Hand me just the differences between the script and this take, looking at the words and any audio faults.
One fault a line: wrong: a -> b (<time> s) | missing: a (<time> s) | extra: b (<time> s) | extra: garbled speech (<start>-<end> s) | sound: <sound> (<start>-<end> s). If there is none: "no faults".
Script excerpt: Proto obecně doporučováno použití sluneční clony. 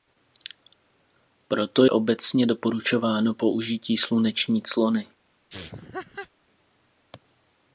sound: laugh (5.5-6.3 s)